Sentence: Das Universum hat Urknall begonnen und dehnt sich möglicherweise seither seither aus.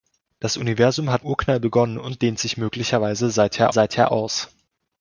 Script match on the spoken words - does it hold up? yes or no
yes